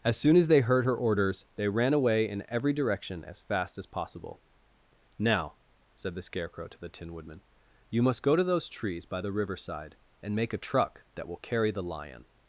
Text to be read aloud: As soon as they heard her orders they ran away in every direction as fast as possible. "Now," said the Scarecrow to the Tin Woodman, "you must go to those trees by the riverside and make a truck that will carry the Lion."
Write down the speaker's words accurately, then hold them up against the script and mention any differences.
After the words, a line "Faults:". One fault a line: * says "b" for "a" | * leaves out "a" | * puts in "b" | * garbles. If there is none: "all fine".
As soon as they heard her orders they ran away in every direction as fast as possible. "Now," said the Scarecrow to the Tin Woodman, "you must go to those trees by the riverside and make a truck that will carry the Lion."
Faults:
all fine